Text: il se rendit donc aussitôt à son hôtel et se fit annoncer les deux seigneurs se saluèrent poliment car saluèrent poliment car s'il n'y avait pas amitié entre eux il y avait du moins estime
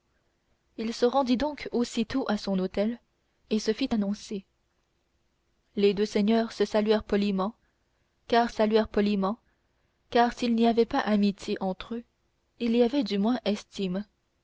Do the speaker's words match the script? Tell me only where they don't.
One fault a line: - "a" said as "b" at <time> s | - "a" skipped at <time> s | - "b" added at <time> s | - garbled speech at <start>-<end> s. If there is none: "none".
none